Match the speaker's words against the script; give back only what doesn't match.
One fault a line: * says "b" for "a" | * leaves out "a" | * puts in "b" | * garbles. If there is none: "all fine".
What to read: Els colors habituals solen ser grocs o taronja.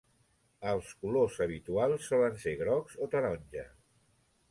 all fine